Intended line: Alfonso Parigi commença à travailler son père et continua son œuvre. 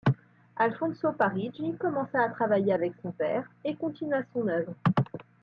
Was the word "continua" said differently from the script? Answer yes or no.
no